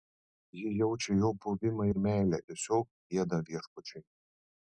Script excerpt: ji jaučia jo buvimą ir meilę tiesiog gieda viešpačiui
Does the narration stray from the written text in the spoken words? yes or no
no